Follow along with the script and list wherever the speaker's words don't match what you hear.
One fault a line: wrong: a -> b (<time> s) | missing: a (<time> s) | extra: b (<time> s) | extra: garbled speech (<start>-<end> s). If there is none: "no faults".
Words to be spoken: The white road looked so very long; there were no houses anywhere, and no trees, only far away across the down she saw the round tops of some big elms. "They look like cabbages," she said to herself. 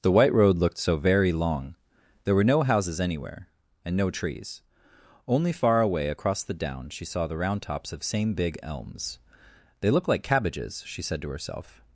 wrong: some -> same (8.0 s)